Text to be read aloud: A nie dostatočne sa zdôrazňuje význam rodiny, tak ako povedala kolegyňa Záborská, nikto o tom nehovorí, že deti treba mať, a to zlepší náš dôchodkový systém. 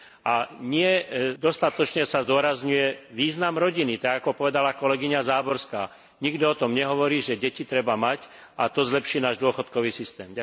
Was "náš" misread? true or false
false